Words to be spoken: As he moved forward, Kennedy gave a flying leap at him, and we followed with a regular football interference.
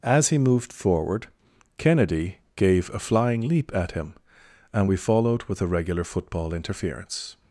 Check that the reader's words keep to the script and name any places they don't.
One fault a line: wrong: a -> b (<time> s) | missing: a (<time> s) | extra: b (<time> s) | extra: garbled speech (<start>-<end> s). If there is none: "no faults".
no faults